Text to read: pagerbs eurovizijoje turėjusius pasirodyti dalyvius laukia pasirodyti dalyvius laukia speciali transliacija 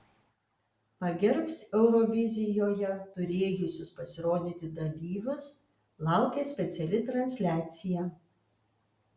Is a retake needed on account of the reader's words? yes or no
yes